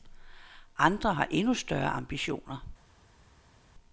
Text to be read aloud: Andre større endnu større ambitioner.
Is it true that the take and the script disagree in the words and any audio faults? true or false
true